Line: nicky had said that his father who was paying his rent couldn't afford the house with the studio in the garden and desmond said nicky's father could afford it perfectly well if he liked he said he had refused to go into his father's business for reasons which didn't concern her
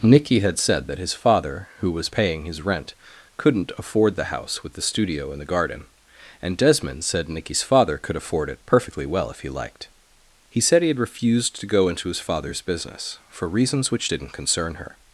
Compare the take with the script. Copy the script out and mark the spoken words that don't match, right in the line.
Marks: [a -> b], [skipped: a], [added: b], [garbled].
nicky had said that his father who was paying his rent couldn't afford the house with the studio in the garden and desmond said nicky's father could afford it perfectly well if he liked he said he had refused to go into his father's business for reasons which didn't concern her